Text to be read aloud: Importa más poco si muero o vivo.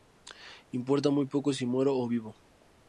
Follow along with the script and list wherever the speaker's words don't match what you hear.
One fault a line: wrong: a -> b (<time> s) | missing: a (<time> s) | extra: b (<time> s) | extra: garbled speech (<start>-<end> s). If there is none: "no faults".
wrong: más -> muy (1.1 s)